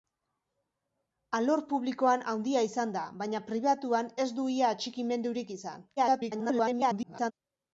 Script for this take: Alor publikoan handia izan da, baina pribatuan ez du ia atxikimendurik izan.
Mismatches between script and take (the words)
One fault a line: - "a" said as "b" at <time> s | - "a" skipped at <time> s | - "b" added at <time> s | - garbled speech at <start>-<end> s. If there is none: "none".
- garbled speech at 6.0-7.3 s